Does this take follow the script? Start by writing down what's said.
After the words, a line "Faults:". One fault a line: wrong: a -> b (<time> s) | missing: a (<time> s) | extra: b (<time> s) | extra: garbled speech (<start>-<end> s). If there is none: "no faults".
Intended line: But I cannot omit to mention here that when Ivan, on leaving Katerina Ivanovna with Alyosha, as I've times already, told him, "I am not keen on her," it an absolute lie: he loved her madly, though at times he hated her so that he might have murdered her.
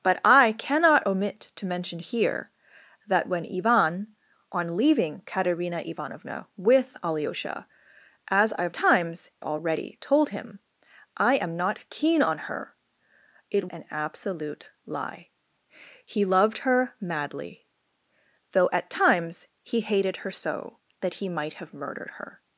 But I cannot omit to mention here that when Ivan, on leaving Katerina Ivanovna with Alyosha, as I've times already, told him, "I am not keen on her," it an absolute lie: he loved her madly, though at times he hated her so that he might have murdered her.
Faults:
no faults